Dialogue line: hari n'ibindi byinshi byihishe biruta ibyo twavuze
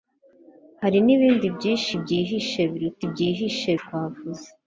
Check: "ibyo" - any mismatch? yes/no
yes